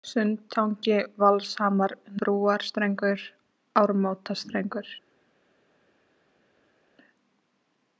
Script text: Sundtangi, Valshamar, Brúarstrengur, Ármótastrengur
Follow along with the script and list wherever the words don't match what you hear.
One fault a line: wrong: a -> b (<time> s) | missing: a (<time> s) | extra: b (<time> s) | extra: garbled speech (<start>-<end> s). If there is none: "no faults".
no faults